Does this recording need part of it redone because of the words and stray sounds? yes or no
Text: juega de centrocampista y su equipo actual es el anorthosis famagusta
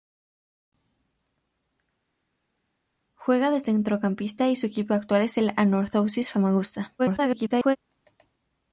yes